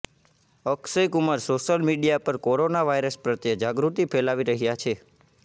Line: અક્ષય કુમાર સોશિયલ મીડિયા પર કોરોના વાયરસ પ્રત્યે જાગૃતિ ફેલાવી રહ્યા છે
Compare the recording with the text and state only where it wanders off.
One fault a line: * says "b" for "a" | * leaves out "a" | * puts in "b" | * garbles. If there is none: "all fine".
all fine